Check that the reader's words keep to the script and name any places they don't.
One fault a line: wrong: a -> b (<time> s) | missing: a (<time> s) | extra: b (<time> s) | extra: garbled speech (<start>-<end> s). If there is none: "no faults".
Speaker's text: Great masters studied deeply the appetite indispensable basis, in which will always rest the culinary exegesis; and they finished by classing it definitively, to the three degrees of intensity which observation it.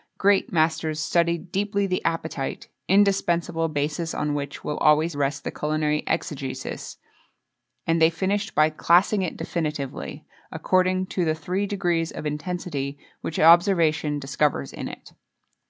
wrong: in -> on (4.2 s)
extra: according (10.5 s)
extra: discovers in (14.2 s)